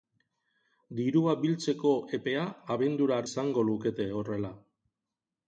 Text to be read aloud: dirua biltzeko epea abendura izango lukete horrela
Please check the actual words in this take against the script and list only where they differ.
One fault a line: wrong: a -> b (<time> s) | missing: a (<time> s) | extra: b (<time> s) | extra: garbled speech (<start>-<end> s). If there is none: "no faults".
no faults